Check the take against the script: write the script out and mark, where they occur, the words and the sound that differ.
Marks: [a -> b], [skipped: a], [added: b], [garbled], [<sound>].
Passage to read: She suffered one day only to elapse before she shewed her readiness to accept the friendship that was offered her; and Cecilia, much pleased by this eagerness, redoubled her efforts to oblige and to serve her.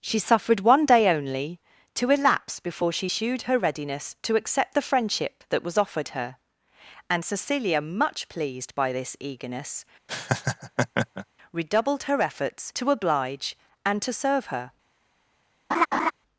She suffered one day only to elapse before she shewed her readiness to accept the friendship that was offered her; and Cecilia, much pleased by this eagerness, [laugh] redoubled her efforts to oblige and to serve her. [laugh]